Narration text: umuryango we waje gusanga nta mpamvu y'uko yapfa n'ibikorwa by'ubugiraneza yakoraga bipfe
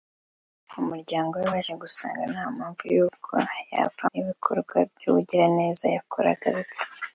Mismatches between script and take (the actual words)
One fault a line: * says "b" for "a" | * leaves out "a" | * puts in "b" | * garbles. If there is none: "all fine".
all fine